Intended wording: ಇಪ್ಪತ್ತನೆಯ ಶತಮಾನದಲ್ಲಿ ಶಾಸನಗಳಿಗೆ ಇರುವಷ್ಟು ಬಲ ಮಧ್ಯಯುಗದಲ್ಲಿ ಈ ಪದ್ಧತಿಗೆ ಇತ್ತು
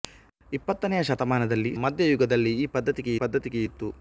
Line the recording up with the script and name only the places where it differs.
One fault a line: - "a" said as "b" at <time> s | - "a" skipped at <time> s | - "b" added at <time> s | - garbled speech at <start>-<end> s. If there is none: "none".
- "ಶಾಸನಗಳಿಗೆ ಇರುವಷ್ಟು ಬಲ" skipped at 1.7 s
- "ಪದ್ಧತಿಗೆ" added at 3.2 s